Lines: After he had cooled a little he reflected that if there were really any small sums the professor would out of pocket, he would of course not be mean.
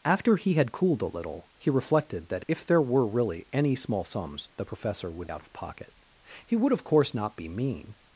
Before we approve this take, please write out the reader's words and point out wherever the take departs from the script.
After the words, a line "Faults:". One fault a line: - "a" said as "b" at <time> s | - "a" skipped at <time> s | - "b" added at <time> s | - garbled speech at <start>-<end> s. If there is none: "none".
After he had cooled a little he reflected that if there were really any small sums the professor would out of pocket, he would of course not be mean.
Faults:
none